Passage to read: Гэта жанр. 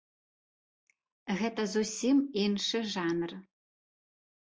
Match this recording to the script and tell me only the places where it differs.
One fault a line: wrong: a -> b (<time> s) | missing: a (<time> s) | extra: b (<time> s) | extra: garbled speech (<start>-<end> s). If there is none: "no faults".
extra: зусім іншы (1.8 s)